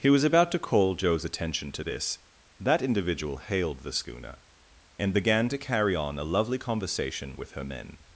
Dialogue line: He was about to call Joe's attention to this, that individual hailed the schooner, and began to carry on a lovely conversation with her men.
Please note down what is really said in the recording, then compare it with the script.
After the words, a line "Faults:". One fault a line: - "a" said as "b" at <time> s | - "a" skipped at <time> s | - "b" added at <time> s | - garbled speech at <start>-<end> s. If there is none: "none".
He was about to call Joe's attention to this, that individual hailed the schooner, and began to carry on a lovely conversation with her men.
Faults:
none